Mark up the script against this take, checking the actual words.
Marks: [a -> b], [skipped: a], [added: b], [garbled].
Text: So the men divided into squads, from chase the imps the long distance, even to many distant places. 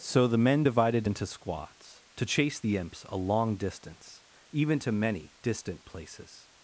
So the men divided into squads, [from -> to] chase the imps [the -> a] long distance, even to many distant places.